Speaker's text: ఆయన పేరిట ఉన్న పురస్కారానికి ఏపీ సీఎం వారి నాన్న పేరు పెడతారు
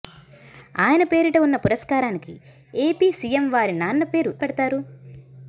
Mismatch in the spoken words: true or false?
false